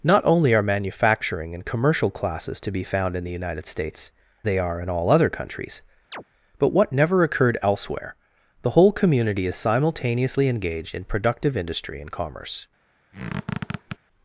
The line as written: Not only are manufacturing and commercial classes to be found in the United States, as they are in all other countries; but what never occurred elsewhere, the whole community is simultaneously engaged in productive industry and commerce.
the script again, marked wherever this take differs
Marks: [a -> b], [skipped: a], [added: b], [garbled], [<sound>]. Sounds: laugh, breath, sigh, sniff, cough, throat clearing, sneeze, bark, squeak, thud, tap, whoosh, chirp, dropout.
Not only are manufacturing and commercial classes to be found in the United States, [skipped: as] they are in all other countries; [chirp] but what never occurred elsewhere, the whole community is simultaneously engaged in productive industry and commerce. [squeak]